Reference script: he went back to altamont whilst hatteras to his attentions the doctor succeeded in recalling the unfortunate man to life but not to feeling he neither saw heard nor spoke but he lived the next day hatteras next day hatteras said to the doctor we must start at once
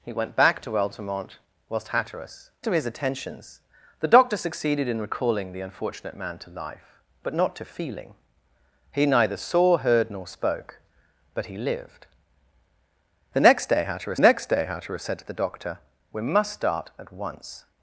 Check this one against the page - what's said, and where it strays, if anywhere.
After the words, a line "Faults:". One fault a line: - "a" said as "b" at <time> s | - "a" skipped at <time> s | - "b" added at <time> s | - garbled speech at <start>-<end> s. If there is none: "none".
he went back to altamont whilst hatteras to his attentions the doctor succeeded in recalling the unfortunate man to life but not to feeling he neither saw heard nor spoke but he lived the next day hatteras next day hatteras said to the doctor we must start at once
Faults:
none